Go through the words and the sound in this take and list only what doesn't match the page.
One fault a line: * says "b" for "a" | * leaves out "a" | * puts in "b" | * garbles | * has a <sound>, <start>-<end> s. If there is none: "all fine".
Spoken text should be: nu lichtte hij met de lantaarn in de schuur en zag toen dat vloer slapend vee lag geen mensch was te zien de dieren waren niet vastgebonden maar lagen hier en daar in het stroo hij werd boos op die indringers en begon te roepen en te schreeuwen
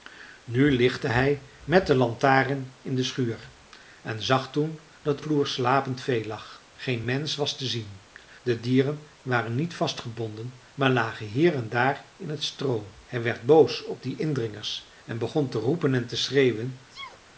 * has a sneeze, 16.9-17.2 s